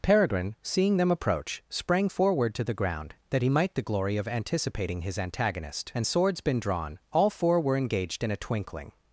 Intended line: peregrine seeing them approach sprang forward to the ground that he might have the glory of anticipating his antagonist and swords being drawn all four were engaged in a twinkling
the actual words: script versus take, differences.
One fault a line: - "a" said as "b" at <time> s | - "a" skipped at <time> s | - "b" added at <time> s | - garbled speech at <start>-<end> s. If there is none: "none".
- "have" skipped at 3.7 s
- "being" said as "been" at 6.4 s